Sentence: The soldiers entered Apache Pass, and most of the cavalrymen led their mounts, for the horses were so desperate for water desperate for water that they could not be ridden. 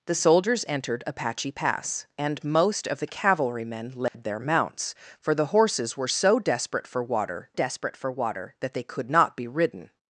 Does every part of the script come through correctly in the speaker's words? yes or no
yes